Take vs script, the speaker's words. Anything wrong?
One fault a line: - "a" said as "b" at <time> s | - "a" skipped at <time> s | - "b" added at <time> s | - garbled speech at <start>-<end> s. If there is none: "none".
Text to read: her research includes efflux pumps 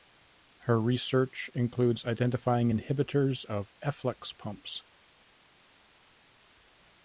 - "identifying inhibitors of" added at 2.0 s